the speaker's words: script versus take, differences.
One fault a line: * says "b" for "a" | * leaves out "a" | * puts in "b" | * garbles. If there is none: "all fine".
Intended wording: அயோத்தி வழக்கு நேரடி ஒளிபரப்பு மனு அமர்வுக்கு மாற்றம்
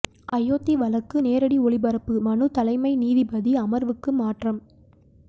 * puts in "தலைமை நீதிபதி"